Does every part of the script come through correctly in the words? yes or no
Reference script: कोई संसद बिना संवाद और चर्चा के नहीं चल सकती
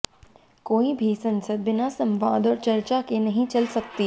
no